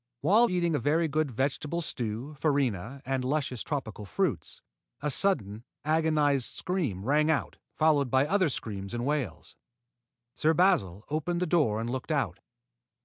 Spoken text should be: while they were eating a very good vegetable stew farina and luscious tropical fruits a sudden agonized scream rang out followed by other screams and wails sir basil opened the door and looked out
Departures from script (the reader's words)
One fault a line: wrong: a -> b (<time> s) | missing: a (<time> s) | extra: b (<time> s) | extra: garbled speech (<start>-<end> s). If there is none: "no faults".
missing: they were (0.5 s)